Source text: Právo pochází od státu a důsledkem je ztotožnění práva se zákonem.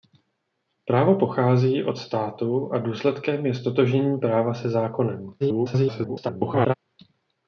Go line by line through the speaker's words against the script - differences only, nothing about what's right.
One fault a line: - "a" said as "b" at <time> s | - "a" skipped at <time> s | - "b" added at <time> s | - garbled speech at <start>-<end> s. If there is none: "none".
- garbled speech at 5.4-6.7 s